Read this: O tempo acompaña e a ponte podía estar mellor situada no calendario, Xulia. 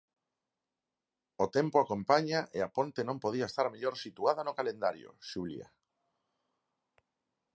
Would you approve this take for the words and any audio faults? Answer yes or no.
no